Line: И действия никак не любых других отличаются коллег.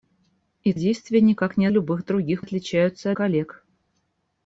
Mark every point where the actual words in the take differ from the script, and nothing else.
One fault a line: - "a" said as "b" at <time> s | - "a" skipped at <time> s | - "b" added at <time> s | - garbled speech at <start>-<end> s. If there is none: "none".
none